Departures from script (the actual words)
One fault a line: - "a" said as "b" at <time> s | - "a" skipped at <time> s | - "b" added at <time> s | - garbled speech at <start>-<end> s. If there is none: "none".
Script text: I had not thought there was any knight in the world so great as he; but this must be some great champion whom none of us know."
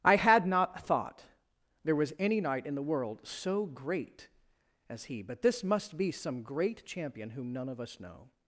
none